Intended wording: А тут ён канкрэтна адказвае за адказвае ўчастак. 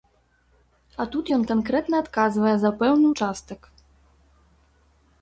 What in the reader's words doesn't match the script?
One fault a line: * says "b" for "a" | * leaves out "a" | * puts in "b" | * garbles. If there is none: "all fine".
* says "пэўны" for "адказвае"